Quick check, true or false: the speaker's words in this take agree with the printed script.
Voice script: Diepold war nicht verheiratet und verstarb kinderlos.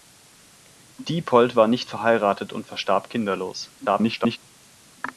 false